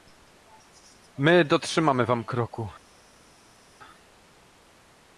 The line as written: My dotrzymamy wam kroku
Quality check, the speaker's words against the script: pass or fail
pass